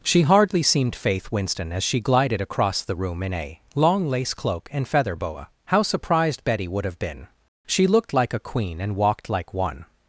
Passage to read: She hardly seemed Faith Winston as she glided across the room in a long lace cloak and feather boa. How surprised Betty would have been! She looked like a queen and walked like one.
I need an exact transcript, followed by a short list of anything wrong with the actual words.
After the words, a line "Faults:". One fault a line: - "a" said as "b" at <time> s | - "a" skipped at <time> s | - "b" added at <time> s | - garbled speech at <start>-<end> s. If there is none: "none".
She hardly seemed Faith Winston as she glided across the room in a long lace cloak and feather boa. How surprised Betty would have been! She looked like a queen and walked like one.
Faults:
none